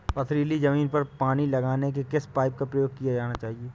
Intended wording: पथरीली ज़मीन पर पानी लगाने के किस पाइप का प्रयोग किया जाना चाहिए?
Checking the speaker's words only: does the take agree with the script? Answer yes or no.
yes